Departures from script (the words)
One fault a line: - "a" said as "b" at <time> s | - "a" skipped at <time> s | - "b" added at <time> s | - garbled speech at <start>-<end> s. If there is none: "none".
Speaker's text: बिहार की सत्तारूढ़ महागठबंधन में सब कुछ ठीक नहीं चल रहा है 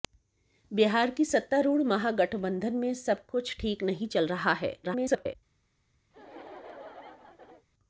- garbled speech at 4.8-5.4 s